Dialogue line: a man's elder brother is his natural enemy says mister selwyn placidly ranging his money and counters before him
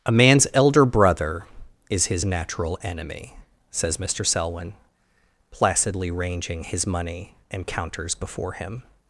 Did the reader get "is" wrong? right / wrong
right